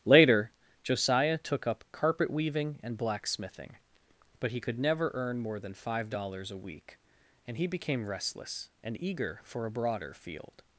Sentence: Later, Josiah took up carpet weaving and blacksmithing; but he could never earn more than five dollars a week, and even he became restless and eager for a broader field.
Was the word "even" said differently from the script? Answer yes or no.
yes